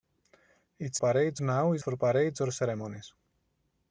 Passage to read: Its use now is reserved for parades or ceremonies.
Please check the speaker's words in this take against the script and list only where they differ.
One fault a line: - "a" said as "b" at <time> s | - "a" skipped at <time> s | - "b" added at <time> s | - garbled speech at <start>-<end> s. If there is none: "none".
- "use" said as "parades" at 1.0 s
- "reserved" skipped at 1.8 s